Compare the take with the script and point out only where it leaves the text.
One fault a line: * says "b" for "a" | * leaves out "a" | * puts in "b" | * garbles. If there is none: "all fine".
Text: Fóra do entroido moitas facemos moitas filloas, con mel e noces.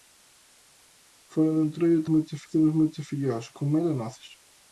all fine